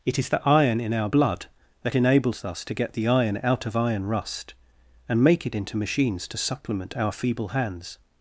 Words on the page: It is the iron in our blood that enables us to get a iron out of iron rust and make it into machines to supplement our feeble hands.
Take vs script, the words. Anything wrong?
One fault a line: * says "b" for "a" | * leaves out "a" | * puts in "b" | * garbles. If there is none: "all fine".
* says "the" for "a"